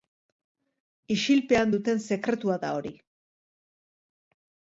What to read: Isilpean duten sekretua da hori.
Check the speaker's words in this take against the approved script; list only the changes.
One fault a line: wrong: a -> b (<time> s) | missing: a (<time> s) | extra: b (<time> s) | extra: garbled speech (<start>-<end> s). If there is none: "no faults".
no faults